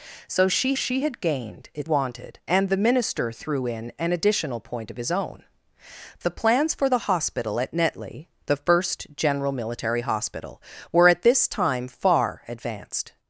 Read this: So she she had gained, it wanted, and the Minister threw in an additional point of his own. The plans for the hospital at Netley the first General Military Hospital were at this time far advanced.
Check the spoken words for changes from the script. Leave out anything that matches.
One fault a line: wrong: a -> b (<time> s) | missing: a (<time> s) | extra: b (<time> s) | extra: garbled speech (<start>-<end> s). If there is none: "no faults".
no faults